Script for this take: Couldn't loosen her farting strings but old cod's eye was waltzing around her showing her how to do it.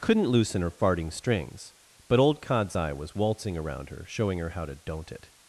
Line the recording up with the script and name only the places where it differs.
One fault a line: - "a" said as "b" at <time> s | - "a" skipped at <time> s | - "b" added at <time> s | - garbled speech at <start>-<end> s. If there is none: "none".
- "do" said as "don't" at 4.7 s